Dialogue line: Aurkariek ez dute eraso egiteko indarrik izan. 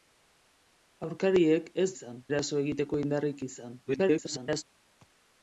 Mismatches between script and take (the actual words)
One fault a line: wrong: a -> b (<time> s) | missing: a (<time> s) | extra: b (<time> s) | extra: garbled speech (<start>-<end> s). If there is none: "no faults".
wrong: dute -> izan (1.9 s)
extra: garbled speech (3.9-4.6 s)